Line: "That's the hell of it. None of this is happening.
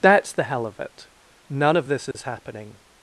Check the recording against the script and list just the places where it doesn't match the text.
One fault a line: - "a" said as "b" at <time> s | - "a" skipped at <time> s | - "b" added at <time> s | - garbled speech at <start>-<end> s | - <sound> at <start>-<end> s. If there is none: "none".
- dropout at 2.1-2.1 s